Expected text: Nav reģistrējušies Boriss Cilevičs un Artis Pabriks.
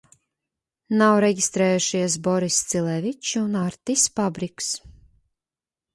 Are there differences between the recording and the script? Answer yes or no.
no